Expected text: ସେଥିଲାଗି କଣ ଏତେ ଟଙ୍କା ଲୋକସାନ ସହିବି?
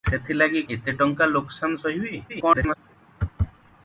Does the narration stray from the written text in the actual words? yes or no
yes